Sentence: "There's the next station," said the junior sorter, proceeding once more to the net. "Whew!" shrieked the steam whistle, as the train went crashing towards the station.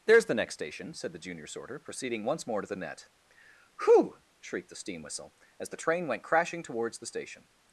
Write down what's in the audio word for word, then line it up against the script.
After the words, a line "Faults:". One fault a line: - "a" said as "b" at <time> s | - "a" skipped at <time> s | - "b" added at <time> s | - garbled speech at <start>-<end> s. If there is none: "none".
"There's the next station," said the junior sorter, proceeding once more to the net. "Whew!" shrieked the steam whistle, as the train went crashing towards the station.
Faults:
none